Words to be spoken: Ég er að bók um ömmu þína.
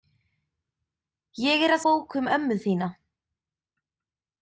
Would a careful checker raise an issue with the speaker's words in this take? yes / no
no